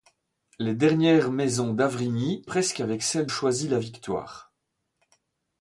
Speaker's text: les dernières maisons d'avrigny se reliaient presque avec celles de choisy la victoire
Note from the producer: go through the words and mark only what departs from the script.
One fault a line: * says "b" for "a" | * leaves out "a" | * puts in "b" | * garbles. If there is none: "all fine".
* leaves out "se reliaient"
* leaves out "de"